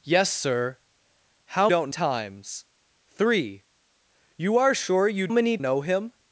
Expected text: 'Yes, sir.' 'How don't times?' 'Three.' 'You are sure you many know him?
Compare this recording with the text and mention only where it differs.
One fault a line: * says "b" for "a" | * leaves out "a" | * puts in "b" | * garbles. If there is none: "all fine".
all fine